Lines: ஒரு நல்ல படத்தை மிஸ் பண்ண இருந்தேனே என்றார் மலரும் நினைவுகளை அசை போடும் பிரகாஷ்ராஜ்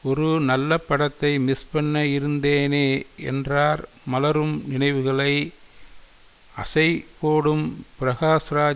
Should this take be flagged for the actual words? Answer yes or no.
no